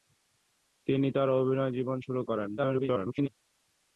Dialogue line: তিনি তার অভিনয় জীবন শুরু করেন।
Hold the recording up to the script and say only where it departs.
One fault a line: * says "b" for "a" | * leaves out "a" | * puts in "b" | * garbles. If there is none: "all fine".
* garbles